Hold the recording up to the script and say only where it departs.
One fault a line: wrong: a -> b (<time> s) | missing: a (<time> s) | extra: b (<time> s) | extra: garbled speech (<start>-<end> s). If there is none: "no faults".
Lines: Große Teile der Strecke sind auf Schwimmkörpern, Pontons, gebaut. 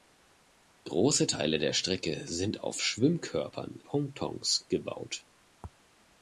no faults